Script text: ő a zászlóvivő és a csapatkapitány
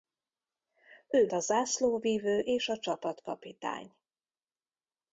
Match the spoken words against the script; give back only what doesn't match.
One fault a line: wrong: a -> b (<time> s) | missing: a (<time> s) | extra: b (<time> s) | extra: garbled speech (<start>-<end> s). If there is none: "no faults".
no faults